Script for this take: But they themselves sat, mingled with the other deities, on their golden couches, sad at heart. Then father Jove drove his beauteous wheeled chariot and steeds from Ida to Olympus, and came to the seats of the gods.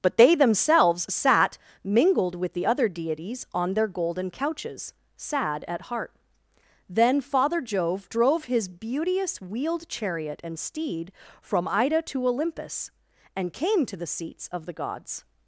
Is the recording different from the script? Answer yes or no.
yes